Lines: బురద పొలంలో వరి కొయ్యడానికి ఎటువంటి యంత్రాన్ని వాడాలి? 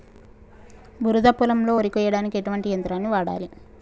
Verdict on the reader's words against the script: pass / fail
pass